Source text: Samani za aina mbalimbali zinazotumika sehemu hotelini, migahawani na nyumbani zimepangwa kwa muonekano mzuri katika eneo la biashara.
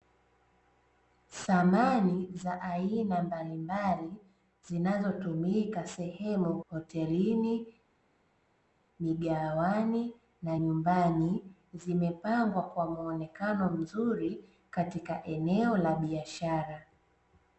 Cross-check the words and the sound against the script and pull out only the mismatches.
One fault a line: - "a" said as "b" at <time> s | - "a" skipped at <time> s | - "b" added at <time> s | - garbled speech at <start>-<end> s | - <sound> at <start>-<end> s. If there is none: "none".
none